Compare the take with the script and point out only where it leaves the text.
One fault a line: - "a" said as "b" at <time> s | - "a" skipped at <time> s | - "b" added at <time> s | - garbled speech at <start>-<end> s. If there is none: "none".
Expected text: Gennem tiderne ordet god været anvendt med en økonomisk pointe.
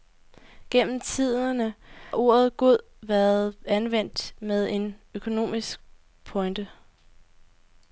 none